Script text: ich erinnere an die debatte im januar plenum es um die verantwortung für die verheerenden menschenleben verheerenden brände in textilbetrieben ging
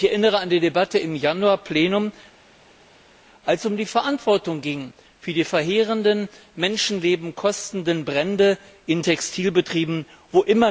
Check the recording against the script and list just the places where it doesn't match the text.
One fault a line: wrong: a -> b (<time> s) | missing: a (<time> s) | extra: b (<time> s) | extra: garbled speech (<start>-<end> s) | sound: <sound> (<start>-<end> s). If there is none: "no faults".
extra: als (3.5 s)
wrong: verheerenden -> kostenden (7.4 s)